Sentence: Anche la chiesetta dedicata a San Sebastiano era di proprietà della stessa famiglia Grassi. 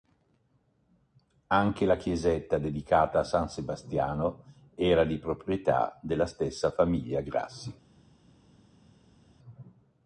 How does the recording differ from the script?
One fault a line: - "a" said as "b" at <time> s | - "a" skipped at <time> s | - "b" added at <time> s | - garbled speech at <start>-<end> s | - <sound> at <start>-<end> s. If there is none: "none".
none